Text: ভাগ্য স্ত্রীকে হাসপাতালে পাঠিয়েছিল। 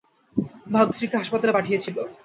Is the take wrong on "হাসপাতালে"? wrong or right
right